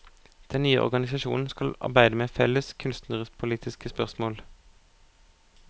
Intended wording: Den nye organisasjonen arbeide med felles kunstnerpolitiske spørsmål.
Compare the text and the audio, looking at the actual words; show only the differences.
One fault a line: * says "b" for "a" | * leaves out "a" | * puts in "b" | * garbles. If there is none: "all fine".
* puts in "skal"